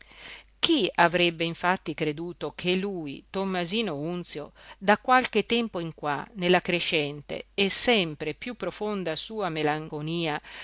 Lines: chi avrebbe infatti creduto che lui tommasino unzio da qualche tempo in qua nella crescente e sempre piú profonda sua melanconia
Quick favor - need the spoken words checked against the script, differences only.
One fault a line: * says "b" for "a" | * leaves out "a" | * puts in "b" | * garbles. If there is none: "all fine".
all fine